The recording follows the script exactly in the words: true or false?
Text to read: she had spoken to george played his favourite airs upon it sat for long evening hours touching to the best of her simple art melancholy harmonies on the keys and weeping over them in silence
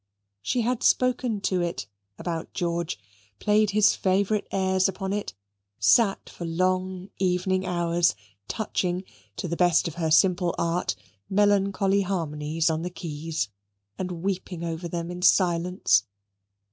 false